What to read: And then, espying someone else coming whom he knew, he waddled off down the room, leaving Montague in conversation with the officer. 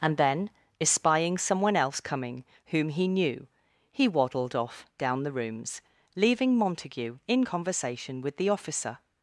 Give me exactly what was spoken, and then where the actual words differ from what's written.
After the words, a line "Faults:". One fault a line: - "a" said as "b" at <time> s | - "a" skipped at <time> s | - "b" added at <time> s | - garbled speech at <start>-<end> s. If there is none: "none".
And then, espying someone else coming whom he knew, he waddled off down the rooms, leaving Montague in conversation with the officer.
Faults:
- "room" said as "rooms" at 5.3 s